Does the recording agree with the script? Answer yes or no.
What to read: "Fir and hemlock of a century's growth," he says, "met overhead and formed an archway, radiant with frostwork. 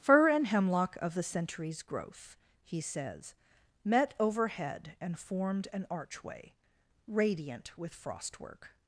no